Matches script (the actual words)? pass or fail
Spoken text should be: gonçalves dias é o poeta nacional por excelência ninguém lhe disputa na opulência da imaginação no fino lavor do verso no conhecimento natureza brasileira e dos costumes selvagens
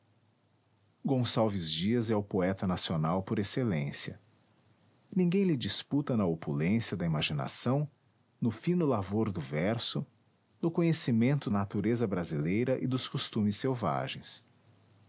pass